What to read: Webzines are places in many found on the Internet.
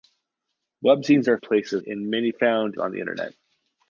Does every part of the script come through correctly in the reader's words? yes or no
yes